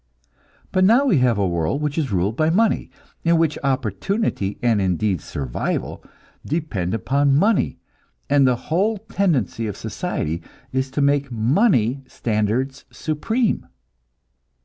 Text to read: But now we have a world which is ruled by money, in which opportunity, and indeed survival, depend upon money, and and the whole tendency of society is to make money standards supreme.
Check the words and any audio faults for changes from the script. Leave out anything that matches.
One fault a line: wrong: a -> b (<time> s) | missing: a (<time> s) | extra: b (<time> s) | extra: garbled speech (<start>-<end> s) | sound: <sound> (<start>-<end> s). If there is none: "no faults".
missing: and (8.5 s)